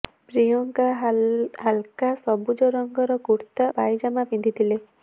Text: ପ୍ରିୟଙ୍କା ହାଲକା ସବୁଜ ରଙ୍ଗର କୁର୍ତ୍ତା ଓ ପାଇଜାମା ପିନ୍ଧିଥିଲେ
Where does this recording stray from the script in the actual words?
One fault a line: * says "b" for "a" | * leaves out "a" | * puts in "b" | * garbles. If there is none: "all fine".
* leaves out "ଓ"